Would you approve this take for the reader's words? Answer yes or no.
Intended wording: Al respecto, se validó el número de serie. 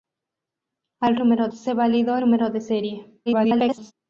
no